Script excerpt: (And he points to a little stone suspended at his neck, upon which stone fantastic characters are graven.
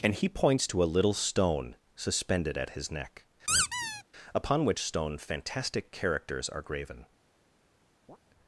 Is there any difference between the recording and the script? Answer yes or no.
no